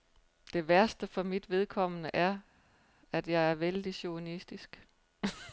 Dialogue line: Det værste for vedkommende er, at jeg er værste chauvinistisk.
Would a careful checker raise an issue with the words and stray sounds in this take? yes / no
yes